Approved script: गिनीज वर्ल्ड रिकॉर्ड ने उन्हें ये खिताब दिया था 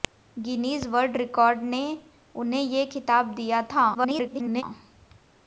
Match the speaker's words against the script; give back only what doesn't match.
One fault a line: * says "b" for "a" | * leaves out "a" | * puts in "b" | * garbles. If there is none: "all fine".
* garbles